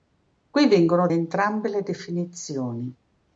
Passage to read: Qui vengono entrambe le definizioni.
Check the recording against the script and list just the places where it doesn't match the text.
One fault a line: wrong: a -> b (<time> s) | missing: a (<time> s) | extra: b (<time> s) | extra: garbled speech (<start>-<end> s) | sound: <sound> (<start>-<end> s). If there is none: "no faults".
no faults